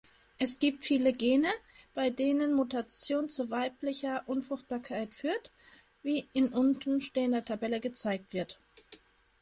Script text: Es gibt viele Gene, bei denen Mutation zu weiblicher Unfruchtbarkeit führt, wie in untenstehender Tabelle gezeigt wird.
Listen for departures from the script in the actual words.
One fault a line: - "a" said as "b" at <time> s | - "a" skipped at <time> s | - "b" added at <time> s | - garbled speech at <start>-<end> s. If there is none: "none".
none